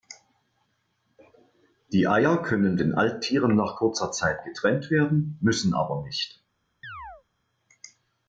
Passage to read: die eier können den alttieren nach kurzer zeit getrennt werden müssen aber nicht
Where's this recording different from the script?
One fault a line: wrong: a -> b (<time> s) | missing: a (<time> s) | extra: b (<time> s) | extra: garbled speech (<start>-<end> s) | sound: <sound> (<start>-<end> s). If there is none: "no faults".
sound: chirp (6.8-7.2 s)